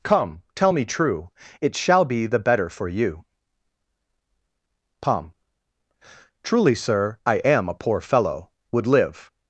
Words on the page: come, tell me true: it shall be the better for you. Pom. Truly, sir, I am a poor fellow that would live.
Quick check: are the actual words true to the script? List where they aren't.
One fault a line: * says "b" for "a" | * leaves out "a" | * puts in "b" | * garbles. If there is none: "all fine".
* leaves out "that"